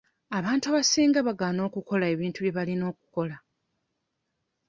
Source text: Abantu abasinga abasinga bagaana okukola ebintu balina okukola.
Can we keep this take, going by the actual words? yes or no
no